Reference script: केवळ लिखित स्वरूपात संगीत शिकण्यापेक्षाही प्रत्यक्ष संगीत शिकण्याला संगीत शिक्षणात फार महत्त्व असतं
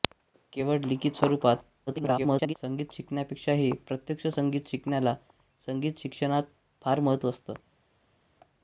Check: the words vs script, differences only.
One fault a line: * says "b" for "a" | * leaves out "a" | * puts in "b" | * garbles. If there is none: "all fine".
* garbles